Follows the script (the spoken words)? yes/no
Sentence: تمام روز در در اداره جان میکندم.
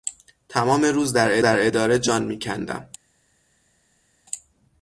yes